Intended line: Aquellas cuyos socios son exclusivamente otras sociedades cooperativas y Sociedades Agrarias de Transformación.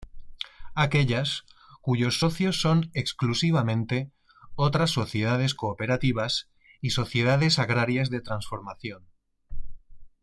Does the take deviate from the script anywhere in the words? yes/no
no